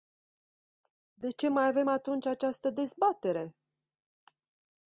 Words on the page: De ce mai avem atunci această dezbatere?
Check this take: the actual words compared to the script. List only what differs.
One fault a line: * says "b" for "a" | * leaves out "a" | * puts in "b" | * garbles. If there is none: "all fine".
all fine